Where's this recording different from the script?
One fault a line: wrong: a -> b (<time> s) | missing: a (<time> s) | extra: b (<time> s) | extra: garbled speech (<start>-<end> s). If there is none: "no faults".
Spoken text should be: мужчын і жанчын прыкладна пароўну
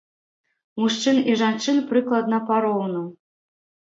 no faults